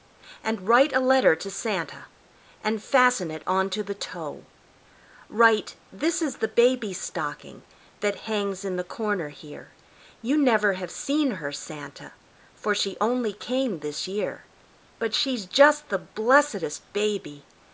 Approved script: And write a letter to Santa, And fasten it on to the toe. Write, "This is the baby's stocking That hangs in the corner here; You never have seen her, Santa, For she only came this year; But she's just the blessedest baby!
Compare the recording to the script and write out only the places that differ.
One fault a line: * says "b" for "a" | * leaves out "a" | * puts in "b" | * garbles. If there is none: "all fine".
all fine